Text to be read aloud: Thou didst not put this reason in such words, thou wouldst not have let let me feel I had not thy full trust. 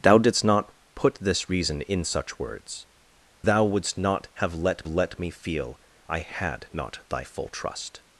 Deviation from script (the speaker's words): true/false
false